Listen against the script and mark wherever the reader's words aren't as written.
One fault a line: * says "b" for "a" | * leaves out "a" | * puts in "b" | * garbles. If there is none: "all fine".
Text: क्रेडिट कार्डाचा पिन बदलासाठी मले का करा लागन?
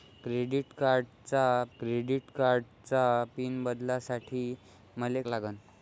* puts in "क्रेडिट कार्डाचा"
* leaves out "का करा"